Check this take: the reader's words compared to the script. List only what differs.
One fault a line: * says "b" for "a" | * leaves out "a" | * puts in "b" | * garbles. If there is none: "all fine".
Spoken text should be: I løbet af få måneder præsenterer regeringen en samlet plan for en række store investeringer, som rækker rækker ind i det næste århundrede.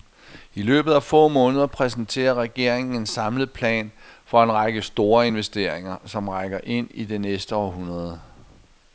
* leaves out "rækker"